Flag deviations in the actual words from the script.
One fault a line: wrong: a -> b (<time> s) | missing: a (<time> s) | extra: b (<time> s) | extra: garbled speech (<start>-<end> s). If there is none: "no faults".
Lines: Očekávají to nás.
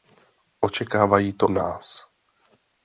no faults